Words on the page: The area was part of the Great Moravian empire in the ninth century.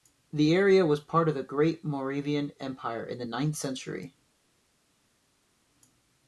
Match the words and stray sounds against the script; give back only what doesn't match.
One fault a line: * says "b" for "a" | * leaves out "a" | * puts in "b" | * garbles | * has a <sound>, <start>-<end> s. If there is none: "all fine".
all fine